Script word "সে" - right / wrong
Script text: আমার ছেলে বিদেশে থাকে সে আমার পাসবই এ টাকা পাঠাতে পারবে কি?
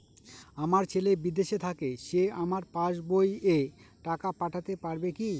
right